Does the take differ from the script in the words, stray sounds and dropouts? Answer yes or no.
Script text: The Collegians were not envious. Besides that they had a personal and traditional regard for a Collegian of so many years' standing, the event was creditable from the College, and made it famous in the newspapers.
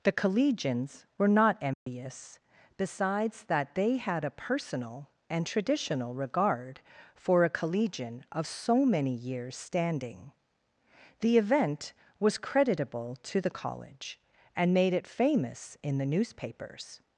yes